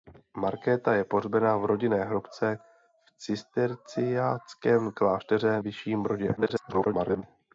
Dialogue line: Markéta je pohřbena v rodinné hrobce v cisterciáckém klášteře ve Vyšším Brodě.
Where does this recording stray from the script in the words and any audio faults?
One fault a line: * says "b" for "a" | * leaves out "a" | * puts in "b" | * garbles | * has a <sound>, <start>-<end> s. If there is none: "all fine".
* leaves out "ve"
* garbles